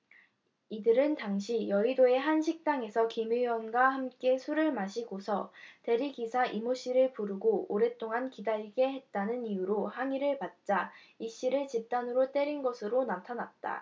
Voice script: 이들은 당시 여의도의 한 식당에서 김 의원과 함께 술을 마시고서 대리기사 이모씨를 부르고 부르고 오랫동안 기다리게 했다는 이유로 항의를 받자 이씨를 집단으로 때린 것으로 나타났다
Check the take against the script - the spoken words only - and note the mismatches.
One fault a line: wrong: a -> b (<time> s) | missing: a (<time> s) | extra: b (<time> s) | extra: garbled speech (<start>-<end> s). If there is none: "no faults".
missing: 부르고 (7.7 s)